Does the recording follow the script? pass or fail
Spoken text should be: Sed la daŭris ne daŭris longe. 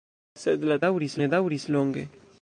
pass